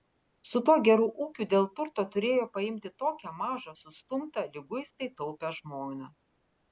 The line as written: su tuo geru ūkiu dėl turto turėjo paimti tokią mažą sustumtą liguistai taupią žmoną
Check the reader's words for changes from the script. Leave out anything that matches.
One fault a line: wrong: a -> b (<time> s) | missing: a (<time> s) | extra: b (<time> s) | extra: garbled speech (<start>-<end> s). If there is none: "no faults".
no faults